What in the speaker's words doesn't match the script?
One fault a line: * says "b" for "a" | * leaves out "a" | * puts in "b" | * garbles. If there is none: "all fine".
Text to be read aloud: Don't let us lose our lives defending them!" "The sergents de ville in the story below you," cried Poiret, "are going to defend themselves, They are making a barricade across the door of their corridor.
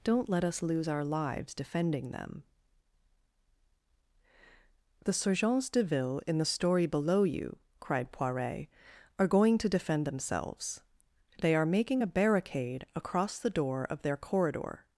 all fine